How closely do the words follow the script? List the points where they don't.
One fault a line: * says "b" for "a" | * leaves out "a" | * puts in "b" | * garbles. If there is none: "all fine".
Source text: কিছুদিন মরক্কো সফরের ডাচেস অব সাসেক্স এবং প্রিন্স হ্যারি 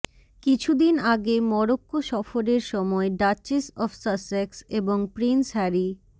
* puts in "আগে"
* puts in "সময়"